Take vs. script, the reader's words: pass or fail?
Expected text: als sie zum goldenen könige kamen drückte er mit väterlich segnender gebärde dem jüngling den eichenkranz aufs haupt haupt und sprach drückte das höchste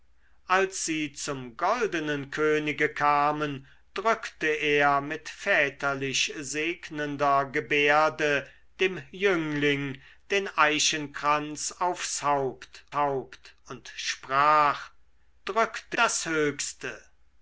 pass